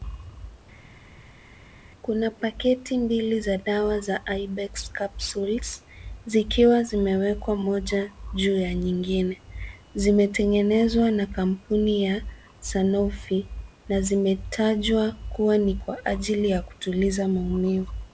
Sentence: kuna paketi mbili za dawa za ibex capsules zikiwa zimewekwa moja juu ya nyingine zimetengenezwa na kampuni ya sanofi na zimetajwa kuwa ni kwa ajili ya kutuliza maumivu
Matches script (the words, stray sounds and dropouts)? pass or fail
pass